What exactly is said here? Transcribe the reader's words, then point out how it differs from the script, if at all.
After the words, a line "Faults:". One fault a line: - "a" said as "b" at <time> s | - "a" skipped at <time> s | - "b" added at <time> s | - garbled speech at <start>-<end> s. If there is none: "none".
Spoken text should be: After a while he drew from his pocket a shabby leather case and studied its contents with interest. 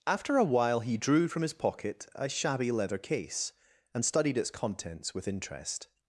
After a while he drew from his pocket a shabby leather case and studied its contents with interest.
Faults:
none